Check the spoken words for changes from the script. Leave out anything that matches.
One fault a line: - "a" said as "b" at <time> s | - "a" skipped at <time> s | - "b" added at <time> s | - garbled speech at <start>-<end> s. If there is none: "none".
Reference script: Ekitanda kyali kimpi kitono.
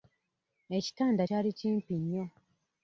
- "kitono" said as "nnyo" at 2.0 s